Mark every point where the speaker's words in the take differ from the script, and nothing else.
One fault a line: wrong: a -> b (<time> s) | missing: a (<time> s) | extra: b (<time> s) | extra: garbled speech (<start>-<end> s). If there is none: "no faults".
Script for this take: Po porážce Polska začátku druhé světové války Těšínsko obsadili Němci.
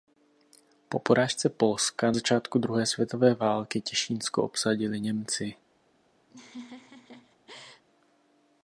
no faults